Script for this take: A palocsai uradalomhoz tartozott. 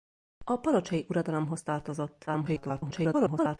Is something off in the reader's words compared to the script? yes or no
yes